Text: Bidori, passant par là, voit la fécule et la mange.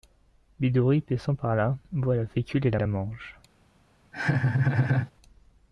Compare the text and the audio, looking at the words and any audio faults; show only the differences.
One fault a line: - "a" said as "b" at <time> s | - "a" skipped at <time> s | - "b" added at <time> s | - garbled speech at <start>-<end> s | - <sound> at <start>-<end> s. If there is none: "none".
- "la" added at 2.8 s
- laugh at 4.1-5.1 s